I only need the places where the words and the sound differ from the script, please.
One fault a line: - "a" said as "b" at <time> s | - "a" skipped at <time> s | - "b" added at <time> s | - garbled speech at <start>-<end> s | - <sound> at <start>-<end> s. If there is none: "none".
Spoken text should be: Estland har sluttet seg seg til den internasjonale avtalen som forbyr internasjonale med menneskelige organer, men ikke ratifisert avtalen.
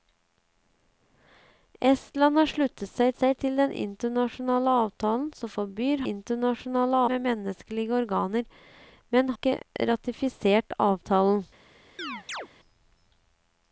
- chirp at 12.0-12.5 s